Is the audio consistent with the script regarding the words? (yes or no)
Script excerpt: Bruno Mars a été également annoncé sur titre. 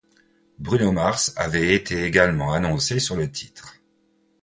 no